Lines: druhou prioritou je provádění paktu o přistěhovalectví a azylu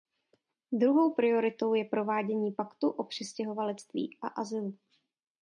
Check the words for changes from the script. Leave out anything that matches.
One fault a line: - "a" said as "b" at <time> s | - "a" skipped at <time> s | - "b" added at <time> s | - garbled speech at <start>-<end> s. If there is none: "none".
none